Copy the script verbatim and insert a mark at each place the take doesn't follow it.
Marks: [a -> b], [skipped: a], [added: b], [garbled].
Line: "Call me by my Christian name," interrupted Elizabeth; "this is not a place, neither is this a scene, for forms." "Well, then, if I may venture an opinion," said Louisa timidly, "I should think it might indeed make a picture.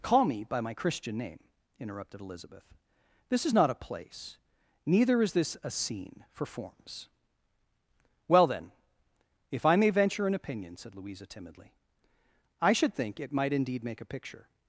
"Call me by my Christian name," interrupted Elizabeth; "this is not a place, neither is this a scene, for forms." "Well, then, if I may venture an opinion," said Louisa timidly, "I should think it might indeed make a picture.